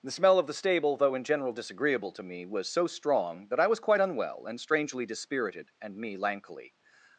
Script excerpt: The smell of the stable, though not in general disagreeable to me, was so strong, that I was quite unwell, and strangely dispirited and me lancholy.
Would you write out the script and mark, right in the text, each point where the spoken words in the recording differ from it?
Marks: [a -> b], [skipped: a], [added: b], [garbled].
The smell of the stable, though [skipped: not] in general disagreeable to me, was so strong, that I was quite unwell, and strangely dispirited and me lancholy.